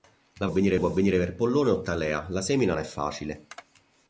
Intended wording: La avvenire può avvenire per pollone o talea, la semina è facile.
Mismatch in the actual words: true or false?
false